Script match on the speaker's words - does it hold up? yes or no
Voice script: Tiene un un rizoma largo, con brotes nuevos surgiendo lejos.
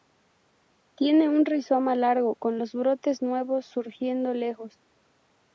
no